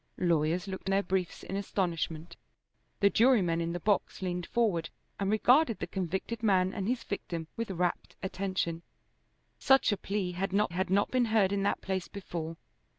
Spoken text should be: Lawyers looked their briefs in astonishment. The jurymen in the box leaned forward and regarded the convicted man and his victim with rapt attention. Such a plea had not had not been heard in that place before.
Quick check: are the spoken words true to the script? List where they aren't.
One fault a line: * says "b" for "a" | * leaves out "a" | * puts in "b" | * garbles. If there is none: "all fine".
all fine